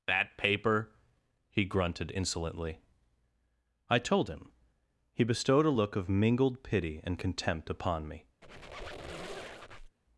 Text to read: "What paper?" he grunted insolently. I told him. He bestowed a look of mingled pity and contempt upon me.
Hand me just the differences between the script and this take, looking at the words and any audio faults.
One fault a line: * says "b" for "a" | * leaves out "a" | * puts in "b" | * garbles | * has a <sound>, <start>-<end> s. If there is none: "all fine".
* says "That" for "What"
* has a squeak, 8.4-10.0 s